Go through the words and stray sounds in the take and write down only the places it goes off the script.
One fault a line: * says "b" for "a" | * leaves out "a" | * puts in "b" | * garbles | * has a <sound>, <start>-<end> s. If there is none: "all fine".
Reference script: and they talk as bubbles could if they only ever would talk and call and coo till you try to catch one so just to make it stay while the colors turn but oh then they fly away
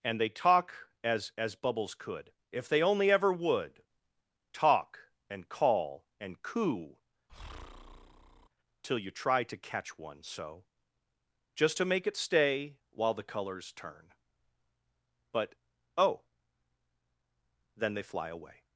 * puts in "as"
* has a breath, 7.3-8.5 s